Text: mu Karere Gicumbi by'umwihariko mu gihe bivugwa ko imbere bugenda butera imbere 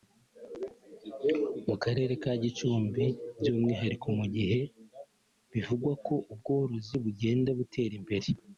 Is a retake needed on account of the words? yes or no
yes